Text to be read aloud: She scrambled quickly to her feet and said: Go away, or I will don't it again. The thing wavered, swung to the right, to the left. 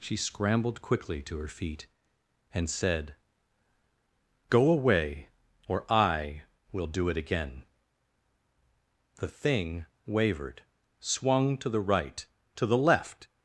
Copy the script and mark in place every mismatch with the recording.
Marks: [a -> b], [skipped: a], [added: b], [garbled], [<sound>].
She scrambled quickly to her feet and said: Go away, or I will [don't -> do] it again. The thing wavered, swung to the right, to the left.